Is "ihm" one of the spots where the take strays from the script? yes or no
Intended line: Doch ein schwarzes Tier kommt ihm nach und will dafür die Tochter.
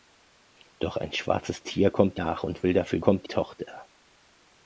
yes